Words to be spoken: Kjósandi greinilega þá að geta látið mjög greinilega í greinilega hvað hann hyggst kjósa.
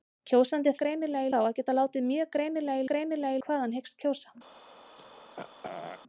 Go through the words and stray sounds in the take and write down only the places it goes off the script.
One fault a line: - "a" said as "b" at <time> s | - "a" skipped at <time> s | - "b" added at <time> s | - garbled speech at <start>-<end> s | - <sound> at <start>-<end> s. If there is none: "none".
- throat clearing at 4.9-6.0 s